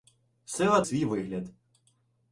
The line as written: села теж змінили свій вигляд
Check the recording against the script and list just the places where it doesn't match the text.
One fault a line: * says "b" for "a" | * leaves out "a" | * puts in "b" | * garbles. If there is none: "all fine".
* leaves out "теж змінили"